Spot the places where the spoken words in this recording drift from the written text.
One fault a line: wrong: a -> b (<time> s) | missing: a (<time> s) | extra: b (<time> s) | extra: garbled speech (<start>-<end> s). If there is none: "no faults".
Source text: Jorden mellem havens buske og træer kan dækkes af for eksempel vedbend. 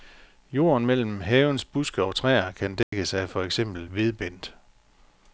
no faults